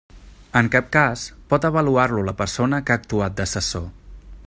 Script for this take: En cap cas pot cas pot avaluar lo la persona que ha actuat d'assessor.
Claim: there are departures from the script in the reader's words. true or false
true